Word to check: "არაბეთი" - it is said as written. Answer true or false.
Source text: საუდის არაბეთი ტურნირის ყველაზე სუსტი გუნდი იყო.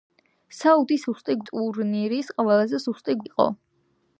false